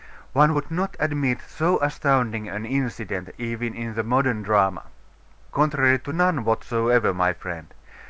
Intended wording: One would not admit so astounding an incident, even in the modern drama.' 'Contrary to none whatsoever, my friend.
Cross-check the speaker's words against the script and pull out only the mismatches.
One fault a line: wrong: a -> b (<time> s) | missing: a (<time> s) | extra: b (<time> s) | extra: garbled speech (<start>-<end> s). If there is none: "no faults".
no faults